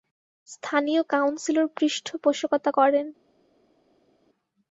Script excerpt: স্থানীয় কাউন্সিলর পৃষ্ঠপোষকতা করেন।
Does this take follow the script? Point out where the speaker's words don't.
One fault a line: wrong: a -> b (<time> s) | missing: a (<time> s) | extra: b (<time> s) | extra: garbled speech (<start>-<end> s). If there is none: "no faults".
no faults